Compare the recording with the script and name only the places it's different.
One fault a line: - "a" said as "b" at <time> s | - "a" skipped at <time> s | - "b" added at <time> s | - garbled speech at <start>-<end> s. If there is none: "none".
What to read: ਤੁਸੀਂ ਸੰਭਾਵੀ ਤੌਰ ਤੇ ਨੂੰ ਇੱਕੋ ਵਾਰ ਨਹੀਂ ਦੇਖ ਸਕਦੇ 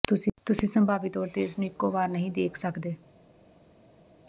- "ਇਸ" added at 1.4 s